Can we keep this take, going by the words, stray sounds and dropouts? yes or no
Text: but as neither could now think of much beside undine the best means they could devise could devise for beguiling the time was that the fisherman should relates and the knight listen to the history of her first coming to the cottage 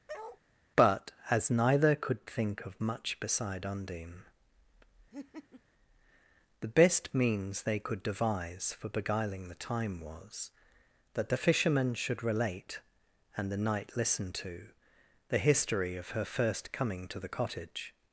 no